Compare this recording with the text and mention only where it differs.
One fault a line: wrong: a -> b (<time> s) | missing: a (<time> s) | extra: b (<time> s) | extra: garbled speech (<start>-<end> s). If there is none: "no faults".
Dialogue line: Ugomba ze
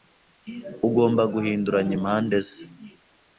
extra: guhinduranya impande (1.3 s)